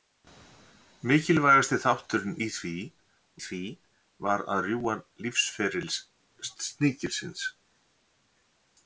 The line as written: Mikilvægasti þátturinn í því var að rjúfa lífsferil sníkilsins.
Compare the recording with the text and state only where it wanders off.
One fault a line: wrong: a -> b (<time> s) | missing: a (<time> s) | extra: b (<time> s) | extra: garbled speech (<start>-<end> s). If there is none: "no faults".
extra: því (3.5 s)